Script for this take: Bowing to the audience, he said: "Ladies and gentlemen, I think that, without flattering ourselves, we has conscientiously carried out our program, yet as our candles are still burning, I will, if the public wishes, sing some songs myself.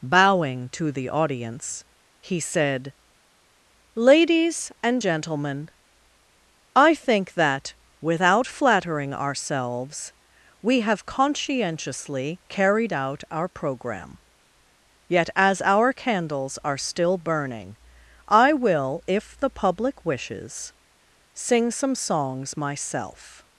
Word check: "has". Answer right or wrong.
wrong